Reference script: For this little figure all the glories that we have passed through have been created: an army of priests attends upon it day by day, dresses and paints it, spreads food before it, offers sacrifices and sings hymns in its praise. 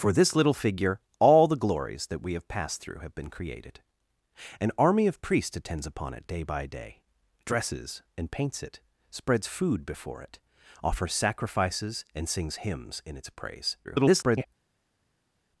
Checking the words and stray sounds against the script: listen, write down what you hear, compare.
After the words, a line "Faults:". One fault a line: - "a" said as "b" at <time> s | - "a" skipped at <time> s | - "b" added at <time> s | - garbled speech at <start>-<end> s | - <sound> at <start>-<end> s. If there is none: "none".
For this little figure all the glories that we have passed through have been created: an army of priests attends upon it day by day, dresses and paints it, spreads food before it, offers sacrifices and sings hymns in its praise. [garbled]
Faults:
- garbled speech at 13.8-14.5 s